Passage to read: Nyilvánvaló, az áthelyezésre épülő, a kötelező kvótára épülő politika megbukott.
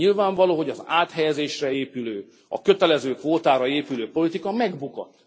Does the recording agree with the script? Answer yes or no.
no